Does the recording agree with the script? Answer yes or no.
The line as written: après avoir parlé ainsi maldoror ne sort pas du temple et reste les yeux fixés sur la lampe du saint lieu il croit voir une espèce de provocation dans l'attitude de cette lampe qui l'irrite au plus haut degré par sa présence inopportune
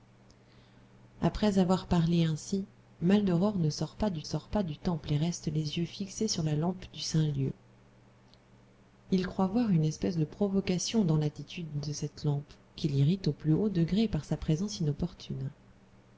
no